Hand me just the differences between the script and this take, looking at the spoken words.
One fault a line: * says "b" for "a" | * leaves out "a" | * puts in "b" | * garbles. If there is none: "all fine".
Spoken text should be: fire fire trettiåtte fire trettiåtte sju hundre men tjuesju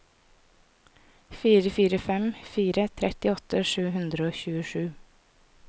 * says "fem" for "trettiåtte"
* says "og" for "men"